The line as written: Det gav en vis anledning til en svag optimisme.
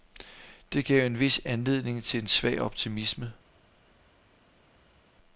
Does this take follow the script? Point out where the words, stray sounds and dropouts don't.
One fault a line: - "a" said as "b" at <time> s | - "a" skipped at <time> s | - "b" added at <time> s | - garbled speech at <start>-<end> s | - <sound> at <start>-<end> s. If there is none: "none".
none